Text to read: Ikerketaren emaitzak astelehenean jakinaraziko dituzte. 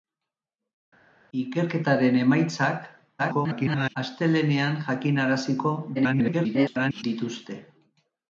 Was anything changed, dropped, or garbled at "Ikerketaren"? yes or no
no